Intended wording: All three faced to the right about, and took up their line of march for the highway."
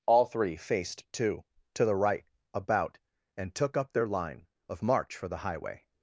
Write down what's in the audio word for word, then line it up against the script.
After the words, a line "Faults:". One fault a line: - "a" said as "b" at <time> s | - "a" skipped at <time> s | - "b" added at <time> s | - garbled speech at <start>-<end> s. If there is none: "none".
All three faced to to the right about, and took up their line of march for the highway."
Faults:
- "to" added at 1.8 s